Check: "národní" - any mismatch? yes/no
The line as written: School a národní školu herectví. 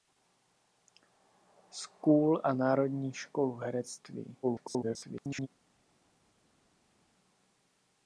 no